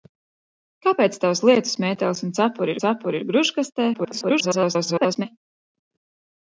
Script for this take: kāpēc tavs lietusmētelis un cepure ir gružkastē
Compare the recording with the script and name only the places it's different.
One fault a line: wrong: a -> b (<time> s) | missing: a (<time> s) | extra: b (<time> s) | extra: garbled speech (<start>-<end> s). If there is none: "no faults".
extra: cepure (2.8 s)
extra: garbled speech (3.9-5.3 s)